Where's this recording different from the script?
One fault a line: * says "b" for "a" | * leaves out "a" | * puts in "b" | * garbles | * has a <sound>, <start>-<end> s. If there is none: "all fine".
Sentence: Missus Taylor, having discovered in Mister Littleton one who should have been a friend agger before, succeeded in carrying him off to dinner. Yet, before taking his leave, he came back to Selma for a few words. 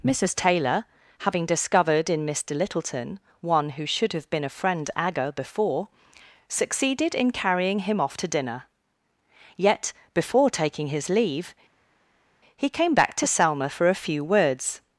all fine